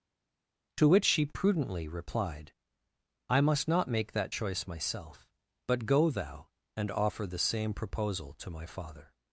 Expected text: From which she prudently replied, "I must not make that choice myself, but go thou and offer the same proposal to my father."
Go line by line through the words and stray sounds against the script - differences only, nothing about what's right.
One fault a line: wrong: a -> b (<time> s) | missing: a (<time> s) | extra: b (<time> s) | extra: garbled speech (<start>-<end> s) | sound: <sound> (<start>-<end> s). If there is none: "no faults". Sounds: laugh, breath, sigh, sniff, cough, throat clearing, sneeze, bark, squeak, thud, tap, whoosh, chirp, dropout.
wrong: From -> To (0.8 s)